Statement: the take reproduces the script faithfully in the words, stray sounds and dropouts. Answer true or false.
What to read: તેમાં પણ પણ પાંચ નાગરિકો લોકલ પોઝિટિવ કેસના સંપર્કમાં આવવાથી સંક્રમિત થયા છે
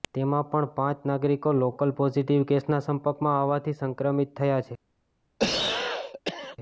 false